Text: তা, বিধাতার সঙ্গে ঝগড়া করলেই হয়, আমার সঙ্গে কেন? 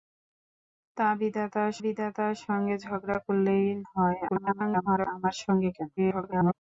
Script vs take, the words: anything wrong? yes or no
yes